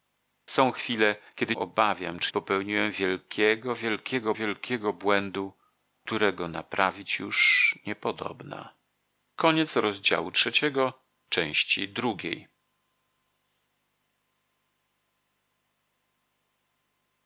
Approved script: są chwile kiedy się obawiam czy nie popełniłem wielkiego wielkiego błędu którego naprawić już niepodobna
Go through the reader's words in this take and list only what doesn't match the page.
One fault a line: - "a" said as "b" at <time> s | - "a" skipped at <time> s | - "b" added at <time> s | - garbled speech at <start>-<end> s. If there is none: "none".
- "się" skipped at 1.6 s
- "nie popełniłem" said as "popełniłem wielkiego" at 2.3 s